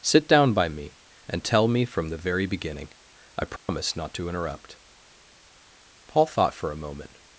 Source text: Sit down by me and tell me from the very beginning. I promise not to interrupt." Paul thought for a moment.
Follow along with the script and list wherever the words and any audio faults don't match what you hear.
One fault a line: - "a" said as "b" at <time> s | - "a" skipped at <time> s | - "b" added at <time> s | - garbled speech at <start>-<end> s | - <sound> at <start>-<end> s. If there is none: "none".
- dropout at 3.6-3.7 s